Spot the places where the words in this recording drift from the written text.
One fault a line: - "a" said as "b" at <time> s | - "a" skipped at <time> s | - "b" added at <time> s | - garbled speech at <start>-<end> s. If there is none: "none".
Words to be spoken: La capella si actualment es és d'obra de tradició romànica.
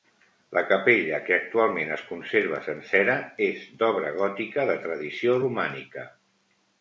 - "si" said as "que" at 1.2 s
- "conserva sencera" added at 2.1 s
- "gòtica" added at 4.2 s